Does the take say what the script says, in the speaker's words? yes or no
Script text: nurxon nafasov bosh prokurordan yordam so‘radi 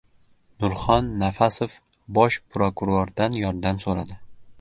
yes